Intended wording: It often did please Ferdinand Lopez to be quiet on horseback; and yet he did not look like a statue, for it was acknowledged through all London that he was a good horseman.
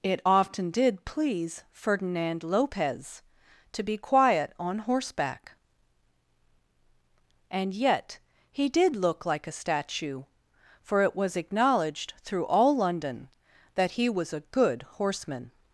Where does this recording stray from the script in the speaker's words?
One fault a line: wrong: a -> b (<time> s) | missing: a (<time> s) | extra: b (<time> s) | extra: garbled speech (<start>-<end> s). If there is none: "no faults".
missing: not (9.0 s)